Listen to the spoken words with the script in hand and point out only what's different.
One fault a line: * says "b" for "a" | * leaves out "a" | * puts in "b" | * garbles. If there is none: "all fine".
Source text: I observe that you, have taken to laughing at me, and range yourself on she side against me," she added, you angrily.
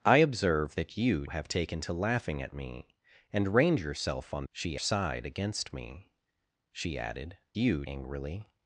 all fine